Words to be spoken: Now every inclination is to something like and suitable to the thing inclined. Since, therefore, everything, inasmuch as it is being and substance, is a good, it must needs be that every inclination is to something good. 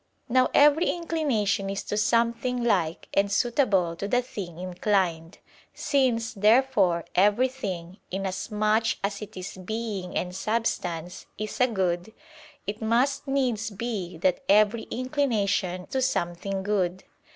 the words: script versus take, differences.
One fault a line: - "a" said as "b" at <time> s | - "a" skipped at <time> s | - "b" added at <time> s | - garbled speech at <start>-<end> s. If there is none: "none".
- "is" skipped at 15.9 s